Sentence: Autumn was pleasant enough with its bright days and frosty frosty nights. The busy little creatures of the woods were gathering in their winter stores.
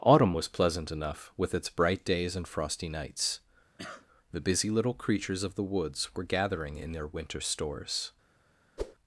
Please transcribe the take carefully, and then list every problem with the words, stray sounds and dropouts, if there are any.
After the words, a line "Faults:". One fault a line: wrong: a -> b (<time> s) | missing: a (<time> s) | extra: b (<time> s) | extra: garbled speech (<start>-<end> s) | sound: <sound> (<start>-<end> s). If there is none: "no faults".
Autumn was pleasant enough with its bright days and frosty nights. The busy little creatures of the woods were gathering in their winter stores.
Faults:
missing: frosty (2.9 s)
sound: cough (3.8-4.1 s)
sound: whoosh (8.8-9.0 s)